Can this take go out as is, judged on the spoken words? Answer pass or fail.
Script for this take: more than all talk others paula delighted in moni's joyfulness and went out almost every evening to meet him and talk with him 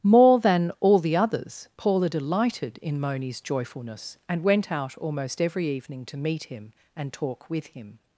fail